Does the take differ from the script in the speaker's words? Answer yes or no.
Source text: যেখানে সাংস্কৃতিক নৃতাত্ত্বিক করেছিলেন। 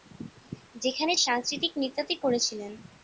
no